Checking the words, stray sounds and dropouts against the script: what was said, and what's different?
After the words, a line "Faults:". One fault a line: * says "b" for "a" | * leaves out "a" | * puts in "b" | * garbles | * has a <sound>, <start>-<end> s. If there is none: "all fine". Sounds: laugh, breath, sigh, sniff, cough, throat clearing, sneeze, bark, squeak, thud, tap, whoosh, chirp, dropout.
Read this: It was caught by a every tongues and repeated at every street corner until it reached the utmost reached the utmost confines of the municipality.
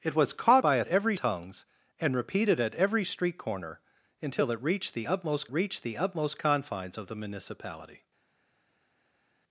It was caught by a every tongues and repeated at every street corner until it reached the utmost reached the utmost confines of the municipality.
Faults:
all fine